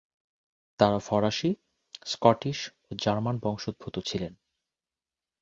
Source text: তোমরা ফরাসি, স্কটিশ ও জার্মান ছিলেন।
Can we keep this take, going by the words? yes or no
no